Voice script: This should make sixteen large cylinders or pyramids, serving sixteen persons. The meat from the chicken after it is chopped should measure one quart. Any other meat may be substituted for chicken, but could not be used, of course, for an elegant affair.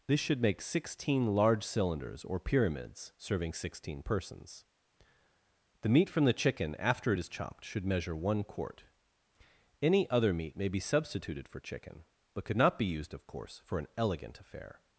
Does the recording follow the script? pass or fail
pass